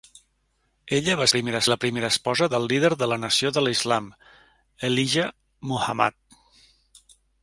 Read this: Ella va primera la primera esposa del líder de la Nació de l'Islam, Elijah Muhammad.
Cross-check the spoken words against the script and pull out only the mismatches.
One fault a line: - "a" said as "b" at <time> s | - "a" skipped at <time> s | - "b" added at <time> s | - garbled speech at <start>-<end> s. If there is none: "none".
none